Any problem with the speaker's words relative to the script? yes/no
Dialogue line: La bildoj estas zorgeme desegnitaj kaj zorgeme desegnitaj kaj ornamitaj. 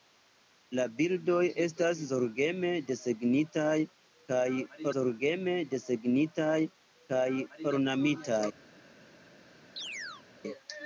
no